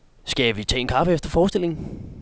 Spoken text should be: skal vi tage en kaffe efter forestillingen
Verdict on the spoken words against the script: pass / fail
pass